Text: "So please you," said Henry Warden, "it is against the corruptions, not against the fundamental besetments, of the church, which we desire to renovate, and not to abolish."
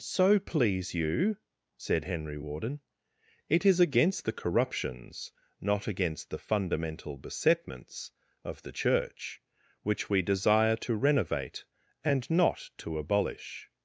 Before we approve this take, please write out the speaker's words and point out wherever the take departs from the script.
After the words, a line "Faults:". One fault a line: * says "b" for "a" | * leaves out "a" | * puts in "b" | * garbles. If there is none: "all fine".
"So please you," said Henry Warden, "it is against the corruptions, not against the fundamental besetments, of the church, which we desire to renovate, and not to abolish."
Faults:
all fine